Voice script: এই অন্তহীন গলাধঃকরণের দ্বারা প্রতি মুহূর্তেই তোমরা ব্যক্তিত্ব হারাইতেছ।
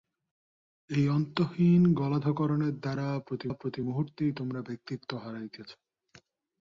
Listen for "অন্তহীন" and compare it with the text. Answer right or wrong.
right